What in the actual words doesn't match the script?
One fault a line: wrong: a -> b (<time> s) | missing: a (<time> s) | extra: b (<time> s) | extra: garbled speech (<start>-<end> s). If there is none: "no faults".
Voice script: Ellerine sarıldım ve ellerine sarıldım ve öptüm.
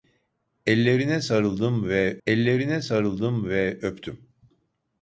no faults